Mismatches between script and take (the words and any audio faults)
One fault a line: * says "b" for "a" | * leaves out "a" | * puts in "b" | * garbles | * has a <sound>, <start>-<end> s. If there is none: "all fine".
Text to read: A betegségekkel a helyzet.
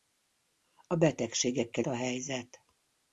all fine